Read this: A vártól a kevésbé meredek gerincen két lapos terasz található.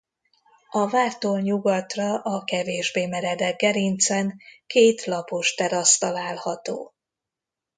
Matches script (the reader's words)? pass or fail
fail